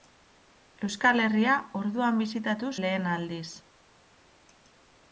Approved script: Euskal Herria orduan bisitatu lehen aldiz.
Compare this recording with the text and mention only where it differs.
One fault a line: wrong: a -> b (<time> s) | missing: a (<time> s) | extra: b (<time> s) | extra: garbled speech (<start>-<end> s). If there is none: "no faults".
no faults